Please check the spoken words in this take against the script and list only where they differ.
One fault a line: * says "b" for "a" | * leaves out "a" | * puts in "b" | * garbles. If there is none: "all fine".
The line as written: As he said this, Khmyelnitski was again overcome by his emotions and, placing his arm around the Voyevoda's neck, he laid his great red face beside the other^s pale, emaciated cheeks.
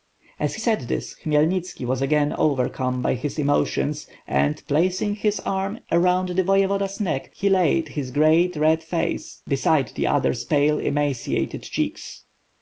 * leaves out "he"